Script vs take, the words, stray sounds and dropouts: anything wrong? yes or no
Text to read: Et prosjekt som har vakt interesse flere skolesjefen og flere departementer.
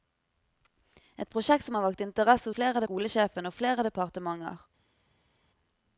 no